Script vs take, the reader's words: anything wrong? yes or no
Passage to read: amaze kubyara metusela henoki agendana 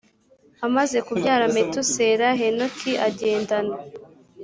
no